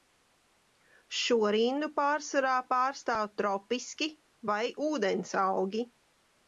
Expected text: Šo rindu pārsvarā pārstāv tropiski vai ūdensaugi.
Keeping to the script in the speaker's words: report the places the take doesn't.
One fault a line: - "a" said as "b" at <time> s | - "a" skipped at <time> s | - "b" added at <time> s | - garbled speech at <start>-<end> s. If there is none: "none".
none